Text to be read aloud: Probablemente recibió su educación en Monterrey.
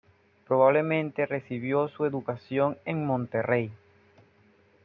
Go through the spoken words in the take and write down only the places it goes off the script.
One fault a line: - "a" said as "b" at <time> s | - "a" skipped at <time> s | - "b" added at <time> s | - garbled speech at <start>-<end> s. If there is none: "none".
none